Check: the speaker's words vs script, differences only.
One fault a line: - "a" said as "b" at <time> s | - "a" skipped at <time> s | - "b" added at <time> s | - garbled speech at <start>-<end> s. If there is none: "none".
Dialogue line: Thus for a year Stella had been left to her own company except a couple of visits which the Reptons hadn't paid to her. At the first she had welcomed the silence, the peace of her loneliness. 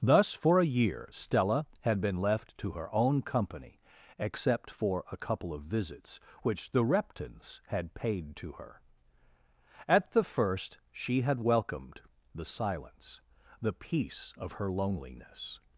- "for" added at 4.7 s
- "hadn't" said as "had" at 7.7 s